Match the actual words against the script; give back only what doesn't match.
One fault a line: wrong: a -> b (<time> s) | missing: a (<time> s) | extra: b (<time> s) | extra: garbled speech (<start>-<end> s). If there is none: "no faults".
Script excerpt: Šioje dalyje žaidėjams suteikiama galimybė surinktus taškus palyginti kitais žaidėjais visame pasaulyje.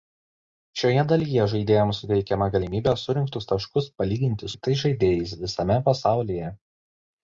no faults